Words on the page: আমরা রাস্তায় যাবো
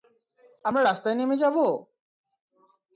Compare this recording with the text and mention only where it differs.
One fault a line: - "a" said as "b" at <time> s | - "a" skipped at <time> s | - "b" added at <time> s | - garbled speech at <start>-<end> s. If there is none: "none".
- "নেমে" added at 1.2 s